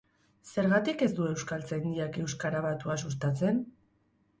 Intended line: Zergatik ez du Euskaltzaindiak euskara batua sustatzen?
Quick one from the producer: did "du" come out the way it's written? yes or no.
yes